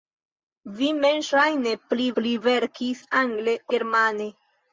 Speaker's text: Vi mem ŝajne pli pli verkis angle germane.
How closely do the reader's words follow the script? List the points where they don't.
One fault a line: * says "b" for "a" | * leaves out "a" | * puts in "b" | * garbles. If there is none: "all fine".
all fine